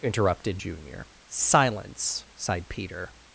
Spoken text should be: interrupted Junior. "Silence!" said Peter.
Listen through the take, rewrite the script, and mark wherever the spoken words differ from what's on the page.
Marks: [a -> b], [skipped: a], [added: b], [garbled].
interrupted Junior. "Silence!" [said -> sighed] Peter.